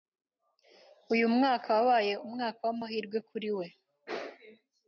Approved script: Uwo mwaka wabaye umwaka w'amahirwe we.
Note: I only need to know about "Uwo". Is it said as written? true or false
false